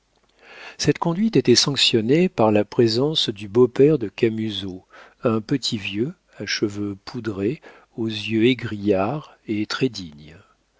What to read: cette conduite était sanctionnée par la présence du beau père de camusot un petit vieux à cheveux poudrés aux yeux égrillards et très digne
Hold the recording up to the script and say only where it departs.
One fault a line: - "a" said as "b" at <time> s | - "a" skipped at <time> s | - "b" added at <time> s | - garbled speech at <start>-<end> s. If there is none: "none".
none